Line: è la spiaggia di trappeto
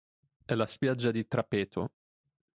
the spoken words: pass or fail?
pass